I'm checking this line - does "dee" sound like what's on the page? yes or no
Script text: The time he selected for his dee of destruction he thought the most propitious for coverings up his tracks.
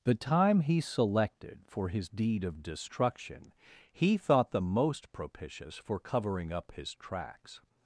no